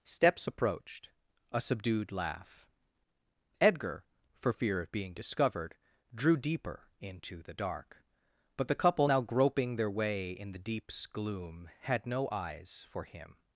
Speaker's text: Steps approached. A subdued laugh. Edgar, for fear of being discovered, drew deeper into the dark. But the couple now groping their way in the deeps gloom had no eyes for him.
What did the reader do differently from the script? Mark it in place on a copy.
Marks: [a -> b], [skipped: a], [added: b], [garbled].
Steps approached. A subdued laugh. Edgar, for fear of being discovered, drew deeper into the dark. But the couple now groping their way in the deeps gloom had no eyes for him.